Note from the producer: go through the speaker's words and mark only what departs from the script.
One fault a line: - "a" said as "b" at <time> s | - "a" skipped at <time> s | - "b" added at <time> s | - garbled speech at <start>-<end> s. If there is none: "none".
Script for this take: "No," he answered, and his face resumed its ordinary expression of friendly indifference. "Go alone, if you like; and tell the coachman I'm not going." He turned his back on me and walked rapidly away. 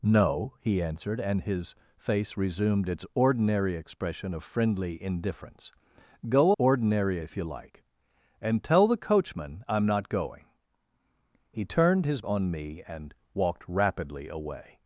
- "alone" said as "ordinary" at 6.6 s
- "back" skipped at 12.2 s